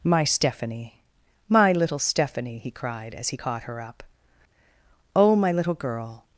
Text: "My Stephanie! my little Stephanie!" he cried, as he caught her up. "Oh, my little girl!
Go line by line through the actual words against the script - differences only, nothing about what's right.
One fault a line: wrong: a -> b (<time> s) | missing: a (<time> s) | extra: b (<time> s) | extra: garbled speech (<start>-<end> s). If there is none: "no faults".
no faults